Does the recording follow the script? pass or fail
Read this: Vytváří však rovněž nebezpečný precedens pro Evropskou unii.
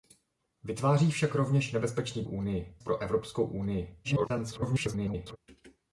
fail